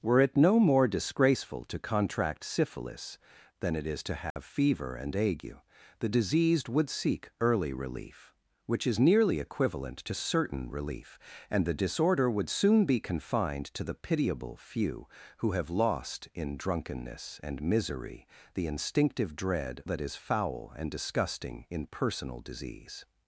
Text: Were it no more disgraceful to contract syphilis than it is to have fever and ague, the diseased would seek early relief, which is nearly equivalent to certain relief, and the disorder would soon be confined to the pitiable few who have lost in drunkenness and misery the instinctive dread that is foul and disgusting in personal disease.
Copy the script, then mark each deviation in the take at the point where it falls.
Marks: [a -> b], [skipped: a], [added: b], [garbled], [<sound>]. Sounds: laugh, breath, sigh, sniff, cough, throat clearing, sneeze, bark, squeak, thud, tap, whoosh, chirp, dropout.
Were it no more disgraceful to contract syphilis than it is to have [dropout] fever and ague, the diseased would seek early relief, which is nearly equivalent to certain relief, and the disorder would soon be confined to the pitiable few who have lost in drunkenness and misery the instinctive dread that is foul and disgusting in personal disease.